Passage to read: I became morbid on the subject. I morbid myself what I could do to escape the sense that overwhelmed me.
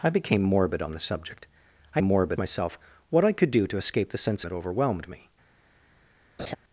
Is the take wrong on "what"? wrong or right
right